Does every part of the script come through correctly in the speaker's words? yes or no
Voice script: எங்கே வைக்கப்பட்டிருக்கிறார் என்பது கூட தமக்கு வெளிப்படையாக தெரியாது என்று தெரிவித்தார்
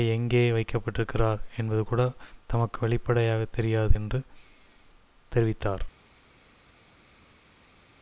yes